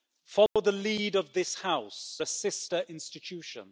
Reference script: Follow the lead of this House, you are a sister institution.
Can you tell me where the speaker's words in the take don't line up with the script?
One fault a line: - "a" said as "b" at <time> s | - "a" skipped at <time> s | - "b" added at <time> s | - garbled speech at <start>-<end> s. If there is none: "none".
- "you are" skipped at 2.2 s